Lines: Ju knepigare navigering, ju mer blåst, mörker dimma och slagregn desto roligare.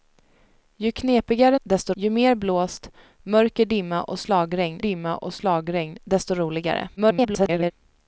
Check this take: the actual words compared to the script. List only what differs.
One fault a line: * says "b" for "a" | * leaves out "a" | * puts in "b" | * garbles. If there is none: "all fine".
* says "desto" for "navigering"
* puts in "dimma och slagregn"
* garbles